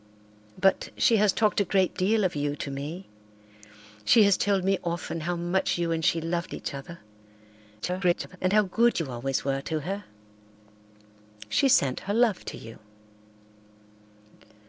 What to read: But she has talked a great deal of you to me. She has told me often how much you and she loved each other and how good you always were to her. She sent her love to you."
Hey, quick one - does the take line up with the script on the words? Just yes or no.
no